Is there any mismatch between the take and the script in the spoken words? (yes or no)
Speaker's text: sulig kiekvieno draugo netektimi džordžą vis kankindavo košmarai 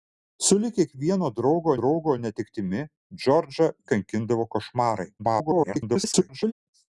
yes